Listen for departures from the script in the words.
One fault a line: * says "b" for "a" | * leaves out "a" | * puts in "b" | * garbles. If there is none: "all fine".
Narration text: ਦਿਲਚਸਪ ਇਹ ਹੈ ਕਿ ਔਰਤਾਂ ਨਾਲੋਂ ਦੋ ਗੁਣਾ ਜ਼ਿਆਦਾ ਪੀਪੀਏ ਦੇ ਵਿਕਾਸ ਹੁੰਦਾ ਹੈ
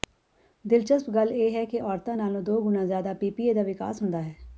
* puts in "ਗੱਲ"
* says "ਦਾ" for "ਦੇ"